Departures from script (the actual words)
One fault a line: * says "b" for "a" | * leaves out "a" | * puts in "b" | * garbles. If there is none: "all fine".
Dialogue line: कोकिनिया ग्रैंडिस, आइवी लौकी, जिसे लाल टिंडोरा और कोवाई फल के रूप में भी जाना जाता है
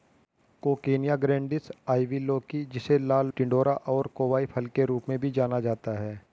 all fine